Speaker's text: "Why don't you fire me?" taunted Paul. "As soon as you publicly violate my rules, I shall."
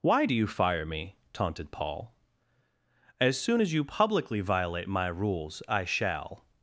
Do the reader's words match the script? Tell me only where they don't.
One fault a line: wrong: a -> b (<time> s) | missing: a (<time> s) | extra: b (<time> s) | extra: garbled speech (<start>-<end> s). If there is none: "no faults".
wrong: don't -> do (0.2 s)